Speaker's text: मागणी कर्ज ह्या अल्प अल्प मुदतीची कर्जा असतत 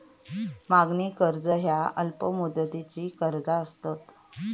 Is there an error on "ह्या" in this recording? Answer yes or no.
no